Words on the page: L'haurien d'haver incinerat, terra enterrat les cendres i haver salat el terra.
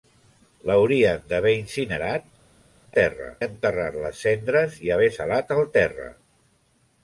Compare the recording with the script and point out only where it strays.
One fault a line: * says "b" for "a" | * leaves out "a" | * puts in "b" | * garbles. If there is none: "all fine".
all fine